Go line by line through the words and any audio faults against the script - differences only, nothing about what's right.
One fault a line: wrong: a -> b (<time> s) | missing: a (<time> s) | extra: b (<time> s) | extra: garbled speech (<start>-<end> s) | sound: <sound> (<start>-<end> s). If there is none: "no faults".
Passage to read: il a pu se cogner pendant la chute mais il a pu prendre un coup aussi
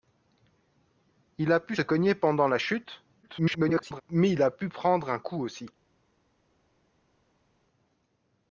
missing: se (1.8 s)
extra: garbled speech (3.2-4.0 s)